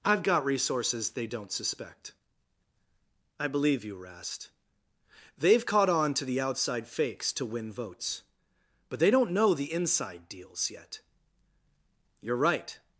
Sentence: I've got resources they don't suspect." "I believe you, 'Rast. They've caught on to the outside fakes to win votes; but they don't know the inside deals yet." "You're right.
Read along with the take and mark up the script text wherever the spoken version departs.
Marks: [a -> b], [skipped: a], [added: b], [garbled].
I've got resources they don't suspect." "I believe you, 'Rast. They've caught on to the outside fakes to win votes; but they don't know the inside deals yet." "You're right.